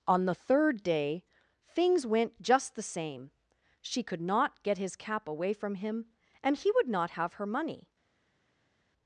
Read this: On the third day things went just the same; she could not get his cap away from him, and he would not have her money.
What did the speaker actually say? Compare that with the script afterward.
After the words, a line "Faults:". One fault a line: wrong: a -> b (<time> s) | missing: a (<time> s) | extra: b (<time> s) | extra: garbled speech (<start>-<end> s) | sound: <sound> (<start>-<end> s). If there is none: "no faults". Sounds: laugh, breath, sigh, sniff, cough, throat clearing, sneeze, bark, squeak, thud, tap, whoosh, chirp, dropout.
On the third day things went just the same; she could not get his cap away from him, and he would not have her money.
Faults:
no faults